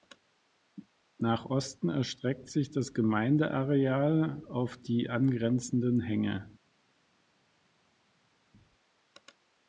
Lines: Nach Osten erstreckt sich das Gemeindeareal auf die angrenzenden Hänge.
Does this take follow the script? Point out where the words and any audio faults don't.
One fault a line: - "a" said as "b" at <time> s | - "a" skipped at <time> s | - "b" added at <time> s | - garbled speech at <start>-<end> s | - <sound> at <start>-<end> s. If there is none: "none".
none